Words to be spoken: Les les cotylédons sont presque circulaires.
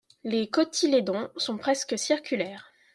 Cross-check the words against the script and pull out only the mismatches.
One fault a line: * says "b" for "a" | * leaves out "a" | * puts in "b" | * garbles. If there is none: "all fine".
* leaves out "les"